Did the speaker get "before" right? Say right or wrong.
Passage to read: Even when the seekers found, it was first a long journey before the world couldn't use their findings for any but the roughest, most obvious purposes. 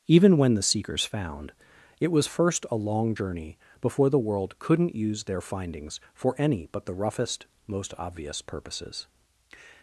right